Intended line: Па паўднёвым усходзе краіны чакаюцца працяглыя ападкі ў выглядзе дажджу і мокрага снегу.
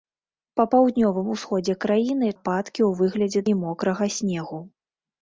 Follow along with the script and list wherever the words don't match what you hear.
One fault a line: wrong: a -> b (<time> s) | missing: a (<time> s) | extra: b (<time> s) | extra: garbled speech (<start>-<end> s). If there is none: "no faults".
missing: чакаюцца працяглыя (2.3 s)
missing: дажджу (3.5 s)